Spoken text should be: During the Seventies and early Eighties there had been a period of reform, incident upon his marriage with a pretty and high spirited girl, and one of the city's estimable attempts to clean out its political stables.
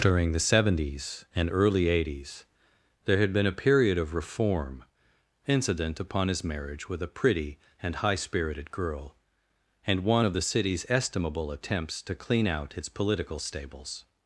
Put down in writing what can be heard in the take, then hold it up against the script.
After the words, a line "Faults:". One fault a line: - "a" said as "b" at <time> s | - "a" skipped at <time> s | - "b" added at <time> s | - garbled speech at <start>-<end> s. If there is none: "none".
During the Seventies and early Eighties there had been a period of reform, incident upon his marriage with a pretty and high spirited girl, and one of the city's estimable attempts to clean out its political stables.
Faults:
none